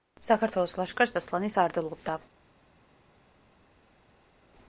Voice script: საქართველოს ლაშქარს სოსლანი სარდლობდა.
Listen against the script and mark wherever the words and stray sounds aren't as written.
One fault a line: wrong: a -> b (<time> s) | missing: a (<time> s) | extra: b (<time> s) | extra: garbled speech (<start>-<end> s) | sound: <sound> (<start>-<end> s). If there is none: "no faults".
no faults